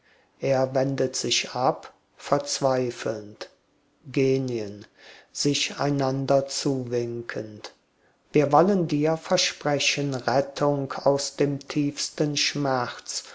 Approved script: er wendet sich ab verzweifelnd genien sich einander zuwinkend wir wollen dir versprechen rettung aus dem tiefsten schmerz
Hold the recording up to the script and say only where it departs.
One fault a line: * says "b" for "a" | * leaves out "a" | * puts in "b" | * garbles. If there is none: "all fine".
all fine